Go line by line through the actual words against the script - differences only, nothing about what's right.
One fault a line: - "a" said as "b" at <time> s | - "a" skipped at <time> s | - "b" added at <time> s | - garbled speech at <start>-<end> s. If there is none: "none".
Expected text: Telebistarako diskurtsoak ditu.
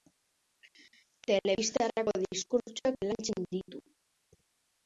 - "lantzen" added at 3.1 s